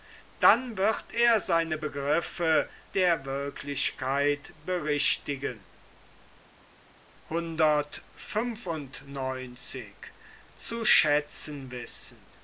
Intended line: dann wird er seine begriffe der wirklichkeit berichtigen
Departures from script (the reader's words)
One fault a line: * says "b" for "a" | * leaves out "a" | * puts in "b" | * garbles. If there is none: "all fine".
all fine